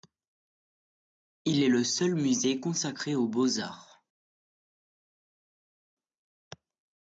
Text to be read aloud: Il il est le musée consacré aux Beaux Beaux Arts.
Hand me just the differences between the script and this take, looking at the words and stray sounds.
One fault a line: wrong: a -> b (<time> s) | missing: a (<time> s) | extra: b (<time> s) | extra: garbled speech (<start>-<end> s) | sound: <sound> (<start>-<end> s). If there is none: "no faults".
missing: il (1.6 s)
extra: seul (1.8 s)
missing: Beaux (3.6 s)